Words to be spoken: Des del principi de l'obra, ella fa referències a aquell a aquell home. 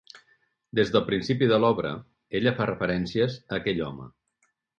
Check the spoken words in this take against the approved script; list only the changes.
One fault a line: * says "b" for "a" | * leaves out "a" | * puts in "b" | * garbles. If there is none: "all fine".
* leaves out "a aquell"